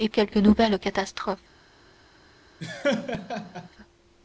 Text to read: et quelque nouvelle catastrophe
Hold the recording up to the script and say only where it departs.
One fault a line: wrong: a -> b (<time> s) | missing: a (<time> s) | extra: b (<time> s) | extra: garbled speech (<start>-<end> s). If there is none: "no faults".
no faults